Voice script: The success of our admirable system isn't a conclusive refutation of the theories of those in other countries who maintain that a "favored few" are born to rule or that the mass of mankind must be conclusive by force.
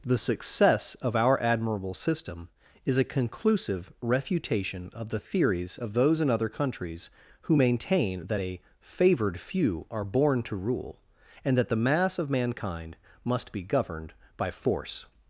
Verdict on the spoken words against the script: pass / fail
fail